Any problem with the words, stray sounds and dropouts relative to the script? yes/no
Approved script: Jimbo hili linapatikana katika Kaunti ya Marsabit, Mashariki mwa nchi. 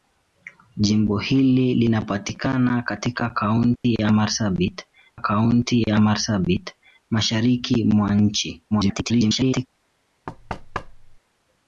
yes